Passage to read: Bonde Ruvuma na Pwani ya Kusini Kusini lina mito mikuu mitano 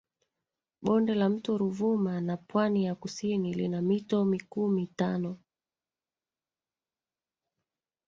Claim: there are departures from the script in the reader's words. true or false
true